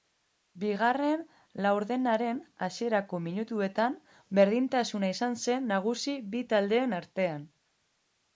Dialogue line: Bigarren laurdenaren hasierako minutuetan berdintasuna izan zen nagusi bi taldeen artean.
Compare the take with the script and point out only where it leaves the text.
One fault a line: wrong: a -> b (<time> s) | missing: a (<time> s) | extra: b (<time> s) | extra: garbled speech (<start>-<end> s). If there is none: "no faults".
no faults